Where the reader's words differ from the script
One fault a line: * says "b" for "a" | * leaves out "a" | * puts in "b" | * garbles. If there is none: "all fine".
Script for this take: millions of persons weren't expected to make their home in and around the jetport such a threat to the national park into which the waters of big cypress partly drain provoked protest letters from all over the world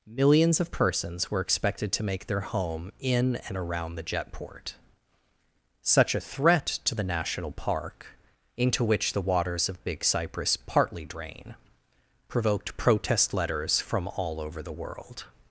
* says "were" for "weren't"